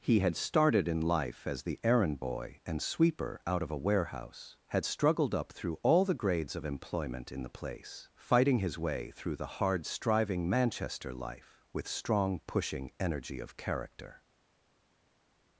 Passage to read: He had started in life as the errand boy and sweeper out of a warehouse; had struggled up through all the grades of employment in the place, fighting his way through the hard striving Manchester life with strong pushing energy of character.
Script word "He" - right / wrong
right